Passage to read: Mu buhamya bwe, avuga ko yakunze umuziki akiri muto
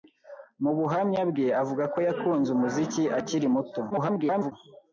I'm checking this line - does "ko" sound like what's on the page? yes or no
yes